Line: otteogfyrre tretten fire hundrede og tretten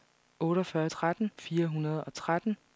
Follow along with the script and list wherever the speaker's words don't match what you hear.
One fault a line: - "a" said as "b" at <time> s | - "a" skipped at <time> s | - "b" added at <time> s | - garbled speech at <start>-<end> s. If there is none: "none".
none